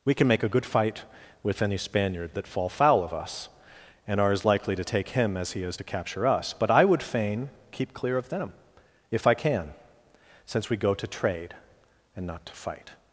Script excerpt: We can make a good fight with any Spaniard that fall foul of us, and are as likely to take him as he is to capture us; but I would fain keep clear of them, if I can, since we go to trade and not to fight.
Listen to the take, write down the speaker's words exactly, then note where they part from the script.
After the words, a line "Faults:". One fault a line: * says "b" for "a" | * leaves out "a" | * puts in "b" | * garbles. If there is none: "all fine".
We can make a good fight with any Spaniard that fall foul of us, and are as likely to take him as he is to capture us; but I would fain keep clear of them, if I can, since we go to trade and not to fight.
Faults:
all fine